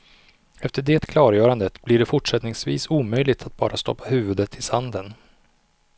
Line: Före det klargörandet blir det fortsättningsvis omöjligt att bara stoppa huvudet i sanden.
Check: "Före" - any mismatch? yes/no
yes